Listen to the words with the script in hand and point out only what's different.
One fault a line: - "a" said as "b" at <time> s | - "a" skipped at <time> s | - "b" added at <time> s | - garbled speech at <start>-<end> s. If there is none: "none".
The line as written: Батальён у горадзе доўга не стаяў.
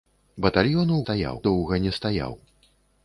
- "горадзе" said as "стаяў" at 1.0 s